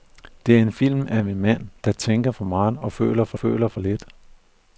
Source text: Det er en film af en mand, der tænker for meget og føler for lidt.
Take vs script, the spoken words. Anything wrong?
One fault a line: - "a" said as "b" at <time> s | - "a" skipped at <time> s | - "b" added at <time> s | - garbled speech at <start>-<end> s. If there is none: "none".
- "føler for" added at 3.3 s